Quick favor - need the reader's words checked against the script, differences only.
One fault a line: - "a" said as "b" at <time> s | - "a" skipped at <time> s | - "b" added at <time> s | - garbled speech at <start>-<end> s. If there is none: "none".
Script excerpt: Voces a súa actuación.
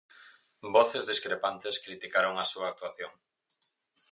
- "discrepantes criticaron" added at 1.1 s